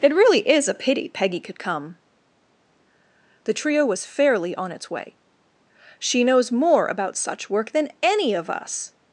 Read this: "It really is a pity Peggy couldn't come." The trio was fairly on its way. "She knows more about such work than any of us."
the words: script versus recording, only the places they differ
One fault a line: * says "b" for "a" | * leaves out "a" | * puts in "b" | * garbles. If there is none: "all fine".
* says "could" for "couldn't"